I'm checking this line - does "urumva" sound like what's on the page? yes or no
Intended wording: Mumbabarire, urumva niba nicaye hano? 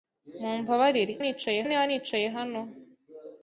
no